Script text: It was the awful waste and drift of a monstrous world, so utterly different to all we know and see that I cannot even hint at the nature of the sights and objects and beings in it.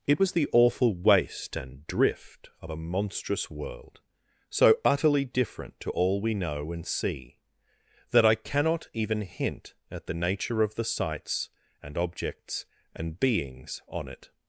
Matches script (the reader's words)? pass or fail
fail